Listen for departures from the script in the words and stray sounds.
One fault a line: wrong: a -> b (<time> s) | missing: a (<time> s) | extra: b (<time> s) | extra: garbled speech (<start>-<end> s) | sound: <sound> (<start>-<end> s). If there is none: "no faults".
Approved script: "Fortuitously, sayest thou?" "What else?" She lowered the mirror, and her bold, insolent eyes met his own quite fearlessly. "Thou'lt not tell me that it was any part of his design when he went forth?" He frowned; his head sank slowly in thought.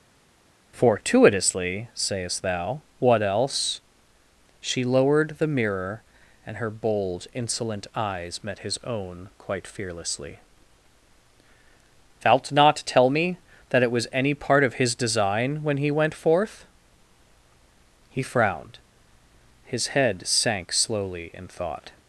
no faults